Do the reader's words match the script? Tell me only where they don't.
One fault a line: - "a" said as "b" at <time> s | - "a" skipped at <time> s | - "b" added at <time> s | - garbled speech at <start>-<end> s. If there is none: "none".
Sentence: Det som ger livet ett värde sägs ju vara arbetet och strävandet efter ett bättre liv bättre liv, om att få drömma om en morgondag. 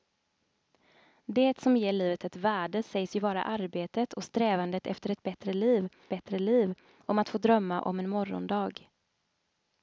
none